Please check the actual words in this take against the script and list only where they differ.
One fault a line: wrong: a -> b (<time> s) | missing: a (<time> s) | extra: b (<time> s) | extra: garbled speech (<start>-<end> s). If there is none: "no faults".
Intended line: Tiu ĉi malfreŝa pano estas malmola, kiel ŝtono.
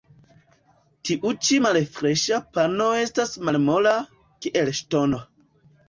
no faults